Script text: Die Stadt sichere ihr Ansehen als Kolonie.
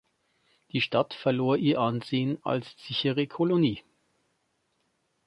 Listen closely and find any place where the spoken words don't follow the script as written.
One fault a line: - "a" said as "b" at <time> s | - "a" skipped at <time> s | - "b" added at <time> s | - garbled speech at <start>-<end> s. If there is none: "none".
- "sichere" said as "verlor" at 1.1 s
- "sichere" added at 2.8 s